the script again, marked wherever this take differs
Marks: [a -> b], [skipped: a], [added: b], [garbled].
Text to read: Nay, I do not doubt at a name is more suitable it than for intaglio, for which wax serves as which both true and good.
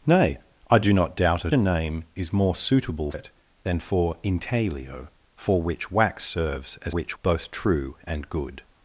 Nay, I do not doubt at a name is more suitable it than for intaglio, for which wax serves as which both true and good.